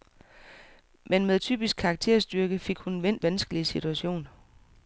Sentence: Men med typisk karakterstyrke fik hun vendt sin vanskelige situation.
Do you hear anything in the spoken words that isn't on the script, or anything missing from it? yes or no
yes